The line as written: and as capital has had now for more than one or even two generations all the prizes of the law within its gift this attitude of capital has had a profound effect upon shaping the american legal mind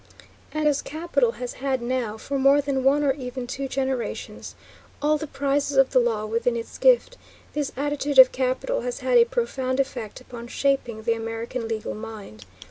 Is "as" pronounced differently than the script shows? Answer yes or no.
no